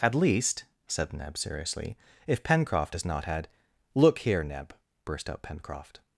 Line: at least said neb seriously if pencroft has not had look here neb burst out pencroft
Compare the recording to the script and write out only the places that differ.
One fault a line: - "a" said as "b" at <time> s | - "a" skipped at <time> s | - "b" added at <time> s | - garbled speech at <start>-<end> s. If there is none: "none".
none